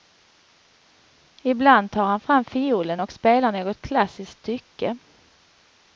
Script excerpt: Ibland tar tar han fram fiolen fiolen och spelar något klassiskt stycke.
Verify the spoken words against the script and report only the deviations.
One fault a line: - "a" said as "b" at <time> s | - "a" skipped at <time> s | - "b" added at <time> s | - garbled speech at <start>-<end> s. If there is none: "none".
- "tar" skipped at 2.0 s
- "fiolen" skipped at 3.0 s